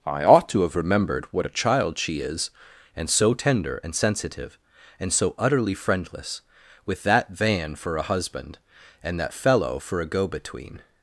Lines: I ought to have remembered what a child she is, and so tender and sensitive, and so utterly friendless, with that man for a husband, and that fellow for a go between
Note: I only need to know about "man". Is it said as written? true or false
false